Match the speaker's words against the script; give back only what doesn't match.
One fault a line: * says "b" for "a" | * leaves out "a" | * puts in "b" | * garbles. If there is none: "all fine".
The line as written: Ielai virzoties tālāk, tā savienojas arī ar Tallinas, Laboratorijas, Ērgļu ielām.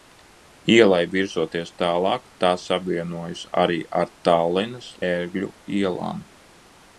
* leaves out "Laboratorijas"